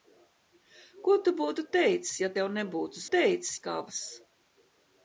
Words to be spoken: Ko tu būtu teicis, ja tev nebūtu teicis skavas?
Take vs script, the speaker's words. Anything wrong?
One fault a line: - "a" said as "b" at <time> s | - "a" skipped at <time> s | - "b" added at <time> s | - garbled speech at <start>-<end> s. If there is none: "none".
none